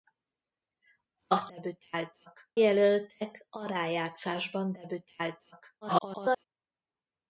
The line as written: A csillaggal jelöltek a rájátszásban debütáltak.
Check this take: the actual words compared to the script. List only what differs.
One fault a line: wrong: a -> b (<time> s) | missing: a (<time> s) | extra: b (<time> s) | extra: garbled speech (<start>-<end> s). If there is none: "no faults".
wrong: csillaggal -> debütáltak (1.5 s)
extra: garbled speech (5.8-6.4 s)